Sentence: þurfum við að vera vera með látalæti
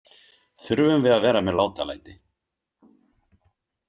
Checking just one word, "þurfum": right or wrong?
right